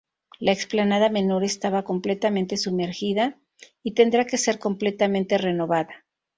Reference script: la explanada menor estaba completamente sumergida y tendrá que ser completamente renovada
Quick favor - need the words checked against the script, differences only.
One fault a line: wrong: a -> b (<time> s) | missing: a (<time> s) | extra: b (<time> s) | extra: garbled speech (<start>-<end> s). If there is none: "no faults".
no faults